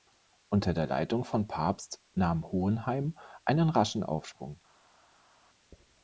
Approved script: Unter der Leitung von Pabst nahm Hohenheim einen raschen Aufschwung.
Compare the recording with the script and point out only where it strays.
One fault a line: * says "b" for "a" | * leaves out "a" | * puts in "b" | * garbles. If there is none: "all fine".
all fine